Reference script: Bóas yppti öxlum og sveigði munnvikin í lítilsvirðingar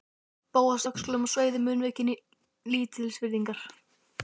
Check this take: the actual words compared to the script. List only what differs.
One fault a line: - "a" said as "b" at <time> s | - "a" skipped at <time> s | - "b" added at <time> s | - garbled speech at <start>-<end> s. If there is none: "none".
- "yppti" skipped at 0.8 s